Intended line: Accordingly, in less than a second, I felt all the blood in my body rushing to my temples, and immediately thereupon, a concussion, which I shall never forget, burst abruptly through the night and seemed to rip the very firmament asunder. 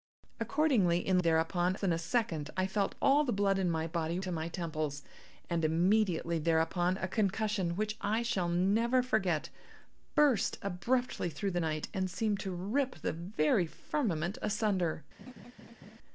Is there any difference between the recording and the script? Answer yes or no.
yes